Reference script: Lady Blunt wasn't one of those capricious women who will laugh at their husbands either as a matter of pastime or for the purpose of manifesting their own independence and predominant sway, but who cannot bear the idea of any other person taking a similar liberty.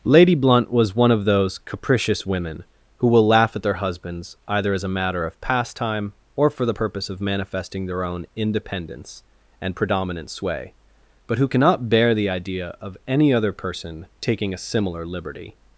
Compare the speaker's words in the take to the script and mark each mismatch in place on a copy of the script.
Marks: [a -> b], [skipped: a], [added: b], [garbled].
Lady Blunt [wasn't -> was] one of those capricious women who will laugh at their husbands either as a matter of pastime or for the purpose of manifesting their own independence and predominant sway, but who cannot bear the idea of any other person taking a similar liberty.